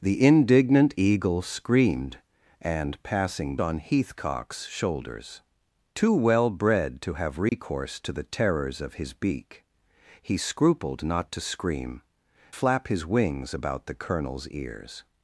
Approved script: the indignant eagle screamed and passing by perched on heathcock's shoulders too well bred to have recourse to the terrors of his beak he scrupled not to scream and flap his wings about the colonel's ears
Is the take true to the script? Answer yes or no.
no